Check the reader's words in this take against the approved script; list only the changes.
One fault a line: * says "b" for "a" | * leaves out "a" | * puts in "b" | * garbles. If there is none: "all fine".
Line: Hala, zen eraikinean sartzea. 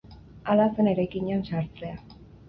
all fine